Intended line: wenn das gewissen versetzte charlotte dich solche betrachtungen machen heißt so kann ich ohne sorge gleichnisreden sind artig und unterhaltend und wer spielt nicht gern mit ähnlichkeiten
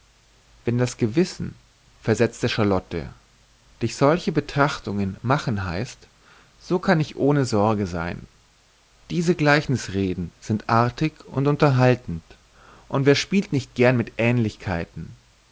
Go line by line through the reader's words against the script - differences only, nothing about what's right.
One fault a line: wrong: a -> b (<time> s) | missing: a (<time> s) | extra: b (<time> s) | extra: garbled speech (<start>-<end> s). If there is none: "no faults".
extra: sein diese (7.8 s)